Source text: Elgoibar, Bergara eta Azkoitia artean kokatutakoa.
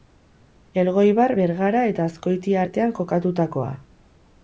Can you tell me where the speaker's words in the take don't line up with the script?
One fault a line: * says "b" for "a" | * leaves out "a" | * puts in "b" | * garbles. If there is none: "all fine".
all fine